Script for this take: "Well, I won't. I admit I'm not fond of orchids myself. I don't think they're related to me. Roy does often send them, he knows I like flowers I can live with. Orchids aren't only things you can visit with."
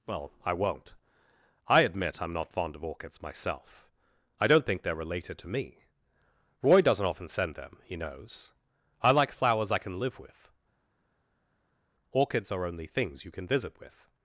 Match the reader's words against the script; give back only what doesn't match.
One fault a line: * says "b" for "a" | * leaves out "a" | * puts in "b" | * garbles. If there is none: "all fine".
* says "doesn't" for "does"
* says "are" for "aren't"